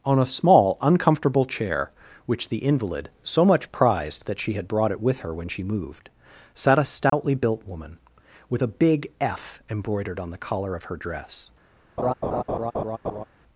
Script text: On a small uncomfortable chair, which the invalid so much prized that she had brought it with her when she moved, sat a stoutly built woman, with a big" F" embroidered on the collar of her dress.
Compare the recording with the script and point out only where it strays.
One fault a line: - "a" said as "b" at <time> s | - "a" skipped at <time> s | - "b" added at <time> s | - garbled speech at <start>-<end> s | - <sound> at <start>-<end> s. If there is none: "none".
- dropout at 7.1-7.1 s
- laugh at 12.0-13.2 s